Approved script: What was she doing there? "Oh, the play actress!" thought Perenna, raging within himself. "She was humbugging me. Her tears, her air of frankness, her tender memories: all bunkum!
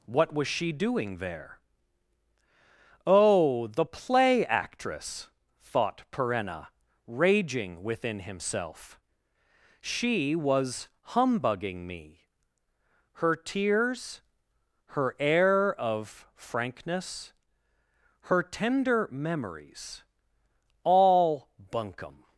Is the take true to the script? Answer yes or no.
yes